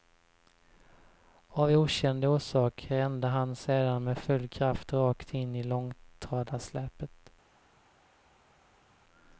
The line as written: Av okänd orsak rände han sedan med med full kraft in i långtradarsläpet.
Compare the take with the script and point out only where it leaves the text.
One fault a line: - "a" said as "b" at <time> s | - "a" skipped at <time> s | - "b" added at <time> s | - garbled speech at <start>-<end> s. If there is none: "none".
- "med" skipped at 4.2 s
- "rakt" added at 4.9 s